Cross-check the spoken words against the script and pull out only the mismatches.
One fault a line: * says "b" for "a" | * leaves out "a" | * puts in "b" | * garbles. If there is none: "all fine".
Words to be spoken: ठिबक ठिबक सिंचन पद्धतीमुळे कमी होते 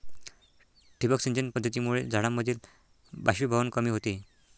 * leaves out "ठिबक"
* puts in "झाडांमधील बाष्पीभवन"